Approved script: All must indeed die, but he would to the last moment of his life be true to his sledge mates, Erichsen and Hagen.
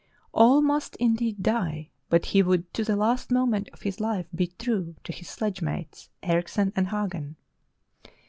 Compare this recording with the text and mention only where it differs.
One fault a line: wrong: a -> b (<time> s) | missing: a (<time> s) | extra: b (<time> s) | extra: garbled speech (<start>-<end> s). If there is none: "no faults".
no faults